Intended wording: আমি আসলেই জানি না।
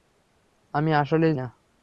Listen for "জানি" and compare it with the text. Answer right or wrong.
wrong